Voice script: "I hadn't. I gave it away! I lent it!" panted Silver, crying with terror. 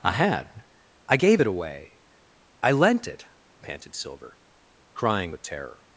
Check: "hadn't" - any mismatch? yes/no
yes